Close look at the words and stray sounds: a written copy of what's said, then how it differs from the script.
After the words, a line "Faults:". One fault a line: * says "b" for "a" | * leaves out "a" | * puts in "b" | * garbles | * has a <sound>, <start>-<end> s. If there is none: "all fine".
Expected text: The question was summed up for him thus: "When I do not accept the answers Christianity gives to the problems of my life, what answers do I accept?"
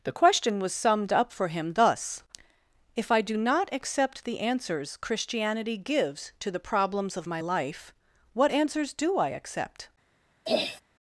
The question was summed up for him thus: "If I do not accept the answers Christianity gives to the problems of my life, what answers do I accept?"
Faults:
* says "If" for "When"
* has a throat clearing, 10.5-10.8 s